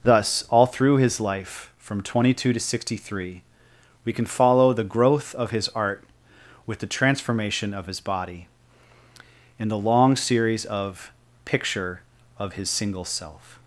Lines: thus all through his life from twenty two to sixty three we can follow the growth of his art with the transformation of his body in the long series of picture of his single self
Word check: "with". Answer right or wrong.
right